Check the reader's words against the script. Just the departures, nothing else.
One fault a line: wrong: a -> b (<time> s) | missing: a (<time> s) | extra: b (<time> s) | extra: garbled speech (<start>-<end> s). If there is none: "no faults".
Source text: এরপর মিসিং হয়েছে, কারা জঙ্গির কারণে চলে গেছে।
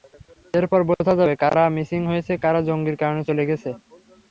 extra: বোঝা যাবে কারা (0.9 s)